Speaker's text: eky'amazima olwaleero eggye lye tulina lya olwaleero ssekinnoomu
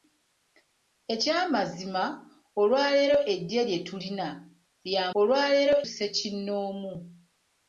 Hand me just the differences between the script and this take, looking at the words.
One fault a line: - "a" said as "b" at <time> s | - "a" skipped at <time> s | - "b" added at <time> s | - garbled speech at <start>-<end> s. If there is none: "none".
none